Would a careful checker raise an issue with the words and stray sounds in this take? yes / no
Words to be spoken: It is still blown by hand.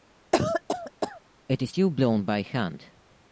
yes